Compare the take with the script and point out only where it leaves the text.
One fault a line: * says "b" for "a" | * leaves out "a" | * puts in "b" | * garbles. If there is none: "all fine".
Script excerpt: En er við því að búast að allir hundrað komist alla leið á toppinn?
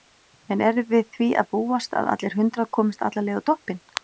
all fine